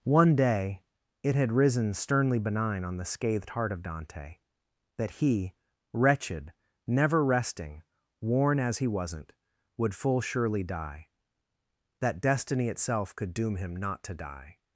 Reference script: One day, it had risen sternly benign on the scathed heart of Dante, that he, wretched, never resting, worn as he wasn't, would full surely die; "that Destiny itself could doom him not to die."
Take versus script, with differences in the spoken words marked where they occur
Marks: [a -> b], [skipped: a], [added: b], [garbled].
One day, it had risen sternly benign on the scathed heart of Dante, that he, wretched, never resting, worn as he wasn't, would full surely die; "that Destiny itself could doom him not to die."